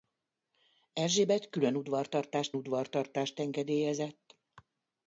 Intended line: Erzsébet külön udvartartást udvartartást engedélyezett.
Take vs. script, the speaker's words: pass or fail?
pass